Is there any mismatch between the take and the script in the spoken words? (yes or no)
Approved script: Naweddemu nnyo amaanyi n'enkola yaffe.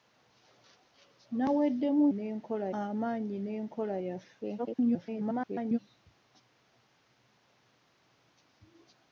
yes